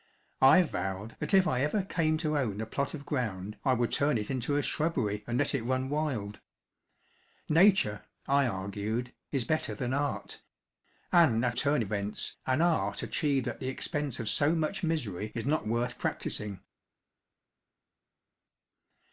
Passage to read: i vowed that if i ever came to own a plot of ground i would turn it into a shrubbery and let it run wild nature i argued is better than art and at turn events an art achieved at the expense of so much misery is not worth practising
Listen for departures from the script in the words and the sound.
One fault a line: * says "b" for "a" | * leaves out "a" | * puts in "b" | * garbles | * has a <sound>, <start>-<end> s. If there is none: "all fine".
all fine